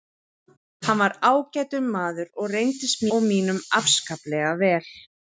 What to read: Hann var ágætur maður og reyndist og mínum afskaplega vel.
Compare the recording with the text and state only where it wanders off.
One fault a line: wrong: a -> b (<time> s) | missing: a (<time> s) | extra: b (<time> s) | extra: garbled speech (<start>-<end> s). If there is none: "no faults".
no faults